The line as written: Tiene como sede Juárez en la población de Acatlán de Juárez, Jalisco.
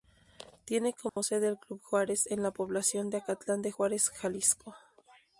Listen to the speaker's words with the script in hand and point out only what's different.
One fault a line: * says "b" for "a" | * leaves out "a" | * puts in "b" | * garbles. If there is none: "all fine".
* puts in "el Club"